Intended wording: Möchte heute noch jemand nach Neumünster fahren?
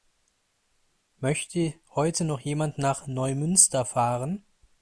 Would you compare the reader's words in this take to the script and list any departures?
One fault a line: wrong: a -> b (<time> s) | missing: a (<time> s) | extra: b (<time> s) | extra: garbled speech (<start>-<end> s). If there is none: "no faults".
no faults